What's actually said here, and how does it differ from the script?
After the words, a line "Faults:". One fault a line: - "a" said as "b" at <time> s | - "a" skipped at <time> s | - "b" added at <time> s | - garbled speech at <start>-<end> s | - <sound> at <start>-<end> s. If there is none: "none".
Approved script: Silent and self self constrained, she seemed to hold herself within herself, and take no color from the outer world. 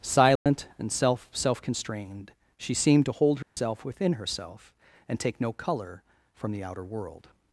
Silent and self self constrained, she seemed to hold herself within herself, and take no color from the outer world.
Faults:
- dropout at 0.4-0.5 s
- dropout at 3.4-3.6 s